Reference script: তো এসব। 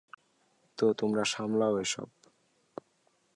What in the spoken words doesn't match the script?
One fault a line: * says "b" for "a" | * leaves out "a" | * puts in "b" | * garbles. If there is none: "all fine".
* puts in "তোমরা সামলাও"